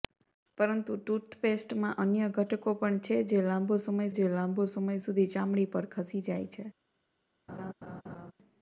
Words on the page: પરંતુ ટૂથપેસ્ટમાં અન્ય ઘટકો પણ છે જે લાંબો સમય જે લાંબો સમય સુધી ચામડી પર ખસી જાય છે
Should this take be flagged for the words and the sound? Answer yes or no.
yes